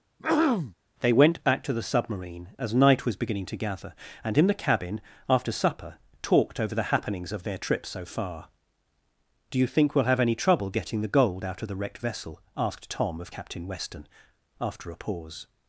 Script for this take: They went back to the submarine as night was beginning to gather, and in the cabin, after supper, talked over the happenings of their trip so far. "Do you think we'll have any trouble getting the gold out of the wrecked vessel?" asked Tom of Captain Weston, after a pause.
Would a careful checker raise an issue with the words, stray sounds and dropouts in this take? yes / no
yes